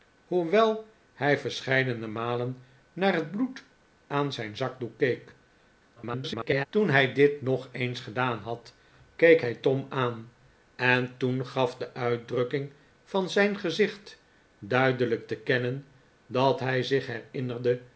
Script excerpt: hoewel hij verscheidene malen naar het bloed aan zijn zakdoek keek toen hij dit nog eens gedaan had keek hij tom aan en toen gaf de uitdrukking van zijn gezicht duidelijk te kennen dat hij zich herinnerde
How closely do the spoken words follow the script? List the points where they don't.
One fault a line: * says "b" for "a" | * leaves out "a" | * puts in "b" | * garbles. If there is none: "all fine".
* garbles